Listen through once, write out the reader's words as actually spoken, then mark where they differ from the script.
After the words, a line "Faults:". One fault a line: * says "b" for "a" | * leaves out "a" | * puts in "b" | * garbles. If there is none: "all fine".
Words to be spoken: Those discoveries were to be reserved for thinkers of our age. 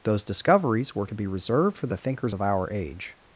Those discoveries were to be reserved for the thinkers of our age.
Faults:
* puts in "the"